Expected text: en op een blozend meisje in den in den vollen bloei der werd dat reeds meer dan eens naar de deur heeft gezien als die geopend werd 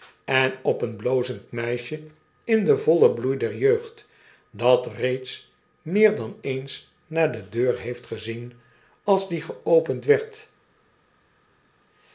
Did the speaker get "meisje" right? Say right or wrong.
right